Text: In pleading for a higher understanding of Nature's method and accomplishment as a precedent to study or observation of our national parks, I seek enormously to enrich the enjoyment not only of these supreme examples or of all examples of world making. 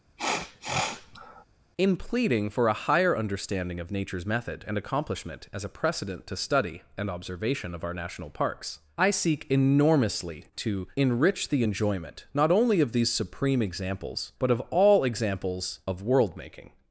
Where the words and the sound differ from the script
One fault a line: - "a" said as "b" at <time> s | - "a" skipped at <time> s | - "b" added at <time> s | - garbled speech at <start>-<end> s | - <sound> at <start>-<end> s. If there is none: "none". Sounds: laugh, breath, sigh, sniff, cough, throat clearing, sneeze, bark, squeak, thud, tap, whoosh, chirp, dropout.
- sniff at 0.2-1.4 s
- "or" said as "and" at 7.0 s
- "or" said as "but" at 14.4 s